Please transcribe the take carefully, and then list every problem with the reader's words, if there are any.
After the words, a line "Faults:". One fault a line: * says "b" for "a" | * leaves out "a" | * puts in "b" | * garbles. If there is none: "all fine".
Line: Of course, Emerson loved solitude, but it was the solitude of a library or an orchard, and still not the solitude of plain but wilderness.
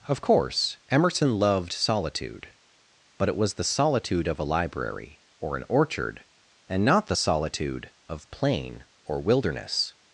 Of course, Emerson loved solitude, but it was the solitude of a library or an orchard, and not the solitude of plain or wilderness.
Faults:
* leaves out "still"
* says "or" for "but"